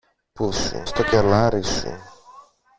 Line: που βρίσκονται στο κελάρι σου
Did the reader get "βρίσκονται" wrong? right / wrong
wrong